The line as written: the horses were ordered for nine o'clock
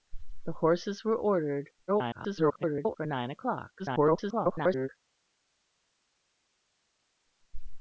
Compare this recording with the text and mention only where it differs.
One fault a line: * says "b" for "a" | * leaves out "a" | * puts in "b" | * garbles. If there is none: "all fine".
* garbles
* garbles